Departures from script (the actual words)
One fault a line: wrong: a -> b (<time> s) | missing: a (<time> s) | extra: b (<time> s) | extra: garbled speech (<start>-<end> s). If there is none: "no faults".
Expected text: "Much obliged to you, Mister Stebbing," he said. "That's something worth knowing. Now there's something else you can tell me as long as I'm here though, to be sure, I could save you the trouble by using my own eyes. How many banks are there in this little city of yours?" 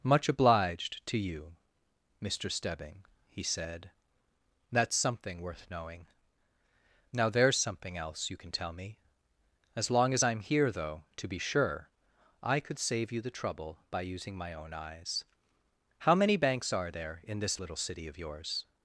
no faults